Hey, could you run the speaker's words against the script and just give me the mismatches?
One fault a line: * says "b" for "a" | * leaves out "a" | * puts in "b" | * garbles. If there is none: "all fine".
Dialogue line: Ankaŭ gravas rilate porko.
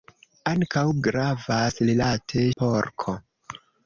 all fine